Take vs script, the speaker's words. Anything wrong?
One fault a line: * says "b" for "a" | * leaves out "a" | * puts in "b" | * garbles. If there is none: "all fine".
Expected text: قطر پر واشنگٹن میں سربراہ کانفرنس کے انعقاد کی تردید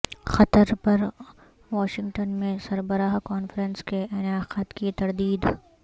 all fine